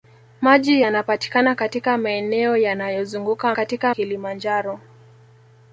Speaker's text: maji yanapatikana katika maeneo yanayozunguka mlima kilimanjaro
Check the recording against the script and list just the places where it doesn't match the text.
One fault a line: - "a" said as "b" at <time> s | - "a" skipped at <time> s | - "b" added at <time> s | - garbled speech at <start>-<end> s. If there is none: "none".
- "mlima" said as "katika" at 3.5 s